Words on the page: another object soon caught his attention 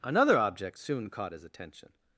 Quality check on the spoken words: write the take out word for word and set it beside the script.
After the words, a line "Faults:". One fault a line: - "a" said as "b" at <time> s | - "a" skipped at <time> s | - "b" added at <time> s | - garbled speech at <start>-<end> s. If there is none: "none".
another object soon caught his attention
Faults:
none